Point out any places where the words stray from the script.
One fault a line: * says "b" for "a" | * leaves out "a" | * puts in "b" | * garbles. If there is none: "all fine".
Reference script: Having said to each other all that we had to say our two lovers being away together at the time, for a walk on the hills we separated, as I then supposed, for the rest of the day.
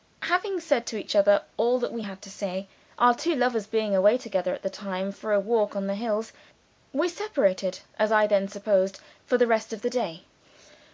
all fine